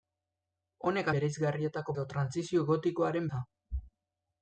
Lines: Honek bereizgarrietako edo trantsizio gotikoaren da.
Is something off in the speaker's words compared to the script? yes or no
no